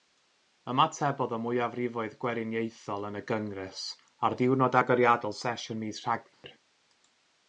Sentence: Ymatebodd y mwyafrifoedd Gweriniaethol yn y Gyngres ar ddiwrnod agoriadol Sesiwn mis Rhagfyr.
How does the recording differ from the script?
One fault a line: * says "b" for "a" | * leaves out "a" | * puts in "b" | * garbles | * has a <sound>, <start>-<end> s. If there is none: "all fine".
* has a dropout, 6.3-6.4 s